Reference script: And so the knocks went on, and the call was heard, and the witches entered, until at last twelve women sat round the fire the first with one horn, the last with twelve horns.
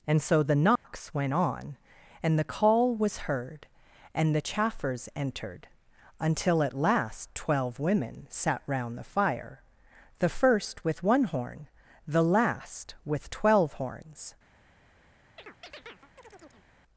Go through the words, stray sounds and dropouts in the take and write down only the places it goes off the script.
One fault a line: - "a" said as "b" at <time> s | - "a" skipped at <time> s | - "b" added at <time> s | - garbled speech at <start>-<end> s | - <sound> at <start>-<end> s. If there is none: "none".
- dropout at 0.8-0.8 s
- "witches" said as "chaffers" at 4.4 s
- chirp at 15.4-16.7 s